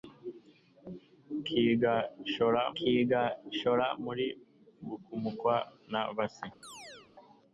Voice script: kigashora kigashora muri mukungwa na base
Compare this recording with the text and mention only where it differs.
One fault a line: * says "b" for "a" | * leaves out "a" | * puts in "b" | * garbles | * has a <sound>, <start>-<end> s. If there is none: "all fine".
* has a chirp, 6.6-7.1 s